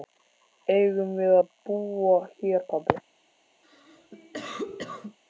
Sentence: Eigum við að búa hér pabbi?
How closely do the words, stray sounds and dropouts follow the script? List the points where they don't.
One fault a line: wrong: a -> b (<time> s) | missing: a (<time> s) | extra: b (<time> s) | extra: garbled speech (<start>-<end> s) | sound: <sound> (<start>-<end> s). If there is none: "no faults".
sound: cough (3.6-5.2 s)